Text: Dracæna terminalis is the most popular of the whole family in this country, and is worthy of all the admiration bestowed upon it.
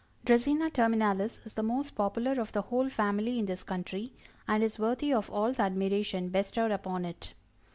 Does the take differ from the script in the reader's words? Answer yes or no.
no